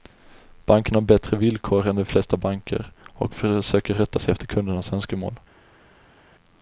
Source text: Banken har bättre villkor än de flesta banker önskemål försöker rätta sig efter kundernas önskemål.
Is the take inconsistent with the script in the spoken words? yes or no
yes